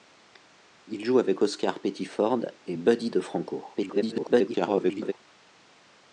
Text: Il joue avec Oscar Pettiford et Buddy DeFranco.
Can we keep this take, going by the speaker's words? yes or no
no